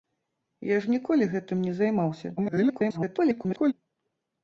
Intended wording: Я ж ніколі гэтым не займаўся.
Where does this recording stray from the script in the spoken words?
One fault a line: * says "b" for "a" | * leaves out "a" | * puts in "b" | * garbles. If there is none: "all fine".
* garbles